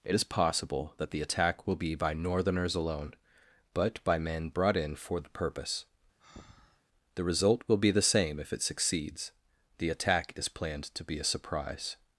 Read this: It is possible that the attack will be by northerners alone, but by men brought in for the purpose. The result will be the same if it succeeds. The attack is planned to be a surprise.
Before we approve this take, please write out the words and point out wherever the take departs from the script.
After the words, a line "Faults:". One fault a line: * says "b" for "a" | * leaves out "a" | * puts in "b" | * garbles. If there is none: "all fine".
It is possible that the attack will be by northerners alone, but by men brought in for the purpose. The result will be the same if it succeeds. The attack is planned to be a surprise.
Faults:
all fine